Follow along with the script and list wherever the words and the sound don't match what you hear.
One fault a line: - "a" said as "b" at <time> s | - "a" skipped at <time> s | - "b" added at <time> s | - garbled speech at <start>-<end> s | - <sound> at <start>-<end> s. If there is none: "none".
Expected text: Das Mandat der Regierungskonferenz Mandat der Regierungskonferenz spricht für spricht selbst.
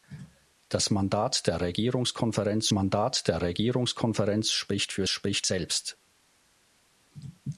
none